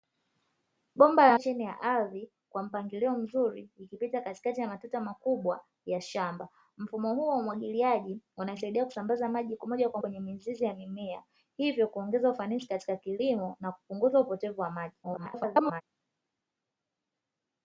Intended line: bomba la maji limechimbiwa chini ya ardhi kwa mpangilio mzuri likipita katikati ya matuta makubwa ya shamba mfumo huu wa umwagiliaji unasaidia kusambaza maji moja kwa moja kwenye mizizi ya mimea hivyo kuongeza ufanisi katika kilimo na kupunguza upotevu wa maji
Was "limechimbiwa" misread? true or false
true